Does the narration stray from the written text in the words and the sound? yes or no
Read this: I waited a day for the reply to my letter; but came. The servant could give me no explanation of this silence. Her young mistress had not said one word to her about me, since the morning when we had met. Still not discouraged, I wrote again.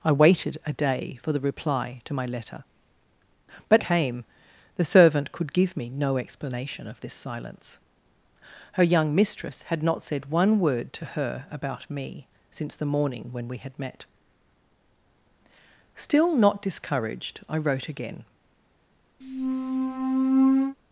yes